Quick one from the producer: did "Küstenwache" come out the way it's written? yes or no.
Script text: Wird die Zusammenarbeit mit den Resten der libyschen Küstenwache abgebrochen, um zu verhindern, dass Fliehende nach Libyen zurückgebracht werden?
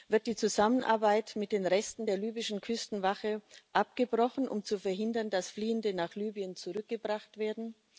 yes